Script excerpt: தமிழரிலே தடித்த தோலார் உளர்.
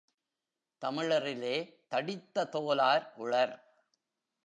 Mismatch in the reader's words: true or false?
false